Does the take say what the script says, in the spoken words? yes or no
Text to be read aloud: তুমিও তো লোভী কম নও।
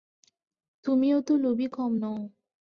yes